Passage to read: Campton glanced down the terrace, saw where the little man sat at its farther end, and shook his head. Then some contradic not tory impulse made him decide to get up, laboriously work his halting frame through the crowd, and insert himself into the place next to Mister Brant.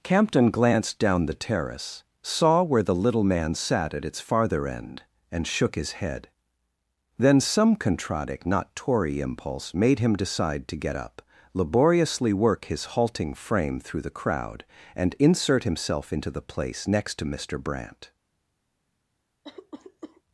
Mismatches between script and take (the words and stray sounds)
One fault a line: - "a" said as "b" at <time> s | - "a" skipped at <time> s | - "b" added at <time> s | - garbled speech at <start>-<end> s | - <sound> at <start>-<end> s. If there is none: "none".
- cough at 19.4-20.2 s